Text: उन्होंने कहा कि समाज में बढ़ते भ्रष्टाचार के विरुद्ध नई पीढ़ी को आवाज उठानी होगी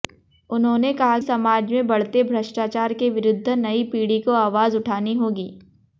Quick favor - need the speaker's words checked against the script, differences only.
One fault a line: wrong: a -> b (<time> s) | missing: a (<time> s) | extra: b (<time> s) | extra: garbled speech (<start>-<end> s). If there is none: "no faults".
missing: कि (1.2 s)